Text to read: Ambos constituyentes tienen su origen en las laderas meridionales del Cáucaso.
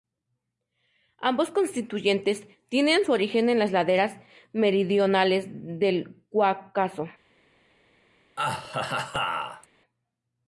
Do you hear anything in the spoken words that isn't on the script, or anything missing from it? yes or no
no